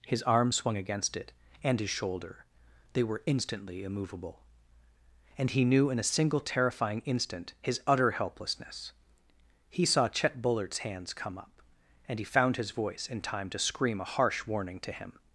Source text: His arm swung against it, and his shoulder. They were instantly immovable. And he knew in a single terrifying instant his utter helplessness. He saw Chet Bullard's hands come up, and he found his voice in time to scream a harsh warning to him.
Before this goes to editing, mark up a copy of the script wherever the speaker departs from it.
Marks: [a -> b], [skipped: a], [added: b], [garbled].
His arm swung against it, and his shoulder. They were instantly immovable. And he knew in a single terrifying instant his utter helplessness. He saw Chet Bullard's hands come up, and he found his voice in time to scream a harsh warning to him.